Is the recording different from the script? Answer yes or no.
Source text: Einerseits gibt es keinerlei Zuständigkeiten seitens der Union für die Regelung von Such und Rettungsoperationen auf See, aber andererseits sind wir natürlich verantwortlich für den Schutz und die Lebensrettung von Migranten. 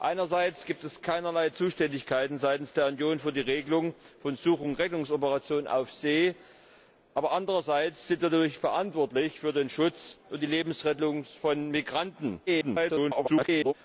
yes